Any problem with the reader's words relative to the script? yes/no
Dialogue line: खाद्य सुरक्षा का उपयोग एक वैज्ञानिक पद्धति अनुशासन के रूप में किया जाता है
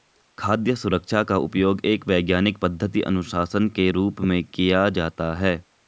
no